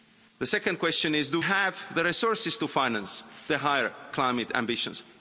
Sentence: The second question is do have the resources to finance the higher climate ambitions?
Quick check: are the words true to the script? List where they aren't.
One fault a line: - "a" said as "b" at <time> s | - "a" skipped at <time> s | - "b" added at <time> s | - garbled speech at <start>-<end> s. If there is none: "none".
none